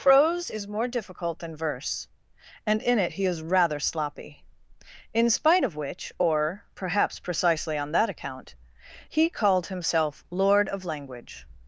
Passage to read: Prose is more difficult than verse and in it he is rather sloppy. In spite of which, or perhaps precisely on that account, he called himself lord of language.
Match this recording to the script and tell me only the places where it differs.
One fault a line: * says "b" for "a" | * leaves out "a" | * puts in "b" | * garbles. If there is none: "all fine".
all fine